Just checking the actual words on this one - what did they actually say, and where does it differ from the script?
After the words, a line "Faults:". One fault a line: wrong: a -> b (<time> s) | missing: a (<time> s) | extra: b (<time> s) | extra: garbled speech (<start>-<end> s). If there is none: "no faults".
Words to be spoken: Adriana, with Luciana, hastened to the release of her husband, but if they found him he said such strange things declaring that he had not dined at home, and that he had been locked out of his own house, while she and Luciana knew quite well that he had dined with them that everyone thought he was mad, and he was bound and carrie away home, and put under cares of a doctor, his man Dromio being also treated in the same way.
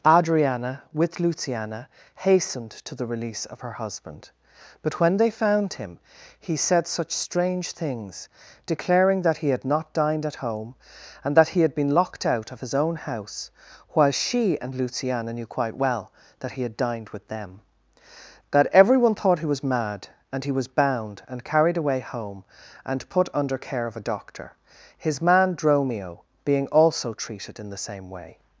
Adriana, with Luciana, hastened to the release of her husband, but when they found him he said such strange things declaring that he had not dined at home, and that he had been locked out of his own house, while she and Luciana knew quite well that he had dined with them that everyone thought he was mad, and he was bound and carried away home, and put under care of a doctor, his man Dromio being also treated in the same way.
Faults:
wrong: if -> when (5.0 s)
wrong: carrie -> carried (21.4 s)
wrong: cares -> care (23.6 s)